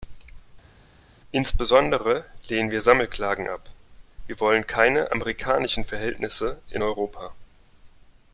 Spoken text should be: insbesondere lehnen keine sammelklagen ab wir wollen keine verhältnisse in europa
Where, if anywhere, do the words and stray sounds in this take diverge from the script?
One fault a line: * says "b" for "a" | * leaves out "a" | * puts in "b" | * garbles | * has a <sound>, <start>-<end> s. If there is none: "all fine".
* says "wir" for "keine"
* puts in "amerikanischen"